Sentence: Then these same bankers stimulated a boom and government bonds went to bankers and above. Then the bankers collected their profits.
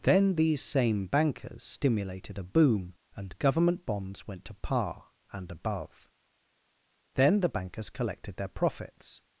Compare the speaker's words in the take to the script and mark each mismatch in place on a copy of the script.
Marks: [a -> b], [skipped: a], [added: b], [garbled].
Then these same bankers stimulated a boom and government bonds went to [bankers -> par] and above. Then the bankers collected their profits.